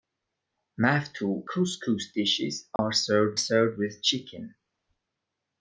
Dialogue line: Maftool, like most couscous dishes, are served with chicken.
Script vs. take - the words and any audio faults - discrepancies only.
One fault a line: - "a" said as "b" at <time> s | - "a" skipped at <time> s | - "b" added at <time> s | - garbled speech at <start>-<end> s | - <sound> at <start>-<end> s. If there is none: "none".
- "like most" skipped at 1.4 s
- dropout at 2.8-2.8 s
- "served" added at 3.4 s